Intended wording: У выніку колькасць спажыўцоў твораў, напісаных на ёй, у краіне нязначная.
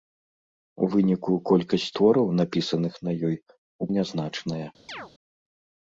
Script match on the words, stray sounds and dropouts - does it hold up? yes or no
no